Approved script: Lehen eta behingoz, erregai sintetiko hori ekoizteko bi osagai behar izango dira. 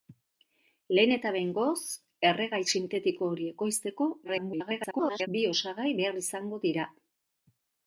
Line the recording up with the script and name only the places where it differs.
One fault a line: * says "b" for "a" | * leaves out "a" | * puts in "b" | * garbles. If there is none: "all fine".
* garbles